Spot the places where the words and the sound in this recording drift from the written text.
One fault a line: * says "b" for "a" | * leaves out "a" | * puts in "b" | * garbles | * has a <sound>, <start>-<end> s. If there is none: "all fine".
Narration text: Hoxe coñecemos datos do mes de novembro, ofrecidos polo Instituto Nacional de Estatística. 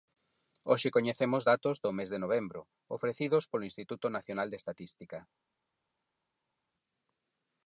all fine